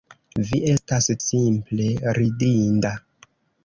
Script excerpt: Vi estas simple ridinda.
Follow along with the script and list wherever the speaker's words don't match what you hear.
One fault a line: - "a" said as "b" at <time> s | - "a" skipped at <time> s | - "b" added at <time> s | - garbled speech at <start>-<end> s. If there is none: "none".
none